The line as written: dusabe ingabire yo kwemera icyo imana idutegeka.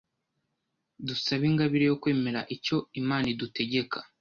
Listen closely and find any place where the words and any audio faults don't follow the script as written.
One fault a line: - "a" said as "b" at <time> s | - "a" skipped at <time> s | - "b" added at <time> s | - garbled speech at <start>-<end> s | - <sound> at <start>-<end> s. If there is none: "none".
none